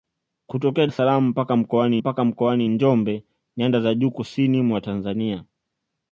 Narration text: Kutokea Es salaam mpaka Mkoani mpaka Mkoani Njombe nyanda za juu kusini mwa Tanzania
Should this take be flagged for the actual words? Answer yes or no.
no